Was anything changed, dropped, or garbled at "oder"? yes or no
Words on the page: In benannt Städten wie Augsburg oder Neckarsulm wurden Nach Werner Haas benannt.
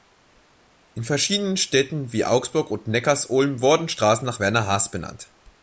yes